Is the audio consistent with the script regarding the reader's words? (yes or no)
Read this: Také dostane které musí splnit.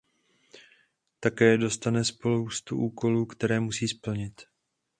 no